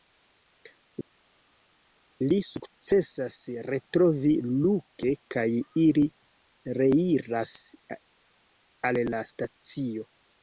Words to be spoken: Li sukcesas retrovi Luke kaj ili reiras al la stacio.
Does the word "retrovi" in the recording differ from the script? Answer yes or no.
no